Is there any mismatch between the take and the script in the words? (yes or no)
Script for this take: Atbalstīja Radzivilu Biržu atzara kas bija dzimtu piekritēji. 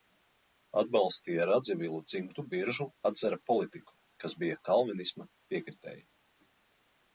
yes